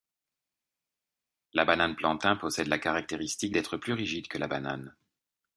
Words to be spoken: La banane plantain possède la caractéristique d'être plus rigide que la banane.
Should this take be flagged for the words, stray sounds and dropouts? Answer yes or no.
no